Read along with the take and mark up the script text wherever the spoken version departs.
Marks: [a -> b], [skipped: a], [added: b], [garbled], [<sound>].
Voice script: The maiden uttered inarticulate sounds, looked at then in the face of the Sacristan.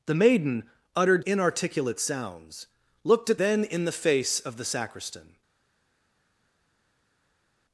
The maiden uttered inarticulate sounds, looked at then in the face of the Sacristan.